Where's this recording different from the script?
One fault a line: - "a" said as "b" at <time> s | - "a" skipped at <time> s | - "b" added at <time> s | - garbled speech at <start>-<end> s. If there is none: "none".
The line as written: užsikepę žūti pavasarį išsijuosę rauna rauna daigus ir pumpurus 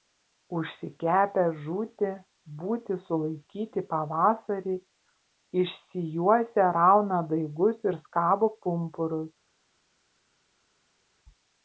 - "būti sulaikyti" added at 2.6 s
- "rauna" skipped at 7.2 s
- "skabo" added at 8.1 s